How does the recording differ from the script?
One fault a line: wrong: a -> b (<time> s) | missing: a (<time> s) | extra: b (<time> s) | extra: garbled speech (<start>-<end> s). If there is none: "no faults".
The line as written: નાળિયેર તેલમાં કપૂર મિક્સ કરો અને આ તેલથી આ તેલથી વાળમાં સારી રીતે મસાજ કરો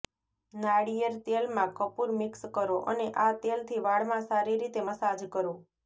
missing: આ તેલથી (3.9 s)